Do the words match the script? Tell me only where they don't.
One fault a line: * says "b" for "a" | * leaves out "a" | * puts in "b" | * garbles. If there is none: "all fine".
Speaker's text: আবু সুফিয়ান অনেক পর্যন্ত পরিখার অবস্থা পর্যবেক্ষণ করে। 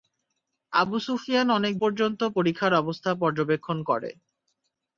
all fine